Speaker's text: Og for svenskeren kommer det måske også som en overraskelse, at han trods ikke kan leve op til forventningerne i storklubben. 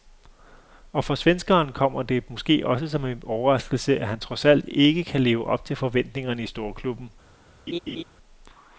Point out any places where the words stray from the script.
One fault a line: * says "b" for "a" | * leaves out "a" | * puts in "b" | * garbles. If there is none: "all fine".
* puts in "alt"